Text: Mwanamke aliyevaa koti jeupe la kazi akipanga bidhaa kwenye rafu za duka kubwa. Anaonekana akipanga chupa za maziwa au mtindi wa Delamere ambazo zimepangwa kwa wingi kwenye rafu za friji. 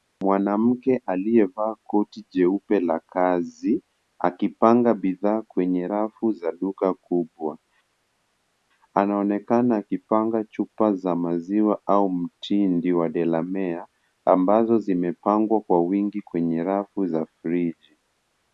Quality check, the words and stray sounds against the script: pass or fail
pass